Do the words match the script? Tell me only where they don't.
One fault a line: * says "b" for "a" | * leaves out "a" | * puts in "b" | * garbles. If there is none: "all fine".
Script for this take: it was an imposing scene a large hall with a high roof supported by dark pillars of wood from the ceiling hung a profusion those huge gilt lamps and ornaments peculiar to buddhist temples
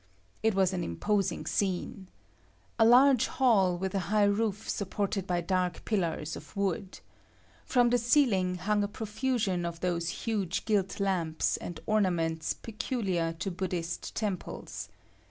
* puts in "of"